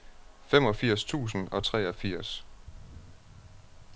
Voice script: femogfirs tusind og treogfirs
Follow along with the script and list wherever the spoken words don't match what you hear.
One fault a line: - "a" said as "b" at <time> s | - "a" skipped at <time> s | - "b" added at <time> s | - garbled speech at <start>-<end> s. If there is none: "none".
none